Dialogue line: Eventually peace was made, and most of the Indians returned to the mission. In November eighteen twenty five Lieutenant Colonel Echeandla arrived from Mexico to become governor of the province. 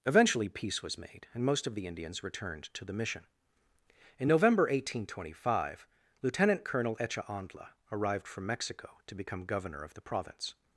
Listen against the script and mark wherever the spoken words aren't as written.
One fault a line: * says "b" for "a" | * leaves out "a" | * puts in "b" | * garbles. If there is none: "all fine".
all fine